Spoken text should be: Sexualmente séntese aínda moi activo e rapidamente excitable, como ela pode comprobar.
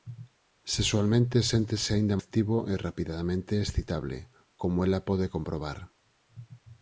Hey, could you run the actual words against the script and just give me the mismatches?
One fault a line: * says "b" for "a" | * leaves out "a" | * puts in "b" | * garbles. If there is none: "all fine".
* leaves out "moi"